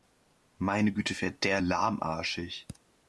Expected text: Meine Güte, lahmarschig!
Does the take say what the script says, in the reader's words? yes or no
no